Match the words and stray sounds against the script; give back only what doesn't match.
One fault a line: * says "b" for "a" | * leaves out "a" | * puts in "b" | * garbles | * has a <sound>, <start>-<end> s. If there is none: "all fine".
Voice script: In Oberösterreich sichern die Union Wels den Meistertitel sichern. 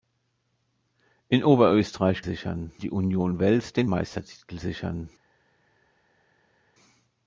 all fine